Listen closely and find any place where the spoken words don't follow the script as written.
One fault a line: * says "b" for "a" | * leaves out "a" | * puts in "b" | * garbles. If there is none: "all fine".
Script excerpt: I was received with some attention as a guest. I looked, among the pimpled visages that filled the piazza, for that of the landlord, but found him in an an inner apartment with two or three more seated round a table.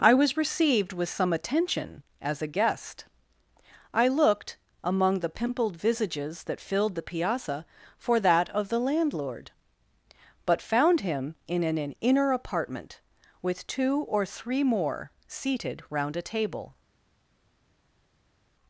all fine